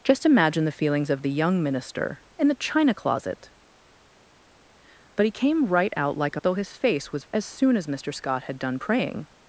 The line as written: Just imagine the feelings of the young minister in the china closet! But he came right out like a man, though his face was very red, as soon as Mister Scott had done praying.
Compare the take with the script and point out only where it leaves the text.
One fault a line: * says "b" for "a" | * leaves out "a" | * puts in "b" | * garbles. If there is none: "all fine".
* leaves out "man"
* leaves out "very red"